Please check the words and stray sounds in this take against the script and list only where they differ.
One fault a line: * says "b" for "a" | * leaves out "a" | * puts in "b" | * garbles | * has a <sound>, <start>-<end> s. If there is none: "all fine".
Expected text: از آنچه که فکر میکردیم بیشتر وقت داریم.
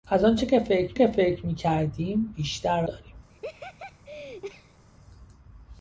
* puts in "که فکر"
* leaves out "وقت"
* has a laugh, 3.3-4.8 s